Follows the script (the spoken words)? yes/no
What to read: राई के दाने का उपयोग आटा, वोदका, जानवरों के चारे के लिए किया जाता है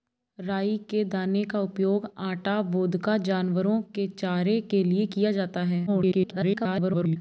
no